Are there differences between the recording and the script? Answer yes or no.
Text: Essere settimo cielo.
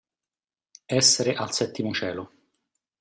yes